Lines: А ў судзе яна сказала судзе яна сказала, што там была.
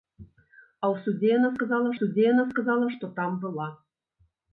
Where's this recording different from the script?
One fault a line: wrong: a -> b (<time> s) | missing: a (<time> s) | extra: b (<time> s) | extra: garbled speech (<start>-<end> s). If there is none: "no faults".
no faults